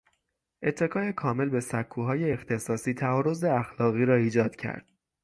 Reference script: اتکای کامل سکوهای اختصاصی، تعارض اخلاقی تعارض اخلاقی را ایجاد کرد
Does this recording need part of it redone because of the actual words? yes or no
yes